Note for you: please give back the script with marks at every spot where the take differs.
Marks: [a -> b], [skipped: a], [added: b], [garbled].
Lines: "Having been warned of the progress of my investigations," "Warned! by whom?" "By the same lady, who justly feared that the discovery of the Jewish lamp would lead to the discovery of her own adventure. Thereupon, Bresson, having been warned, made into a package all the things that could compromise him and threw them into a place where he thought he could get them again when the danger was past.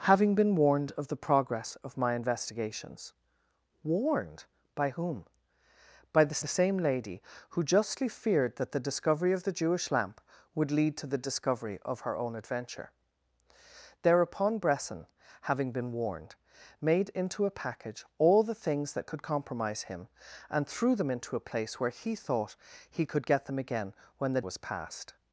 "Having been warned of the progress of my investigations," "Warned! by whom?" "By the [added: the] same lady, who justly feared that the discovery of the Jewish lamp would lead to the discovery of her own adventure. Thereupon, Bresson, having been warned, made into a package all the things that could compromise him and threw them into a place where he thought he could get them again when the [skipped: danger] was past.